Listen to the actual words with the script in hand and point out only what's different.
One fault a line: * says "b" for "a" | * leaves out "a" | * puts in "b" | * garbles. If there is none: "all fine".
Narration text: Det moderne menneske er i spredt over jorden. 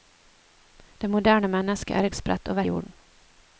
all fine